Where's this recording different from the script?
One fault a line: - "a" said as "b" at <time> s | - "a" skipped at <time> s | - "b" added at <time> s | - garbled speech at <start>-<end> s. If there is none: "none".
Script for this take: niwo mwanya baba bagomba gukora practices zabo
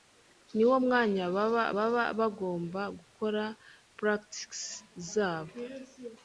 - "baba" added at 1.8 s